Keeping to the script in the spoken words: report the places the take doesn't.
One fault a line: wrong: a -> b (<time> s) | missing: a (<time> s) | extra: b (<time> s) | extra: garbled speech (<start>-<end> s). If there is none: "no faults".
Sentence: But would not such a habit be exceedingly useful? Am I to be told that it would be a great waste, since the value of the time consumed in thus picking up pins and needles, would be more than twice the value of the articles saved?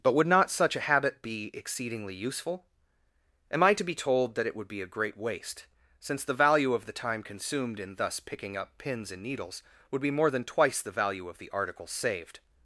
no faults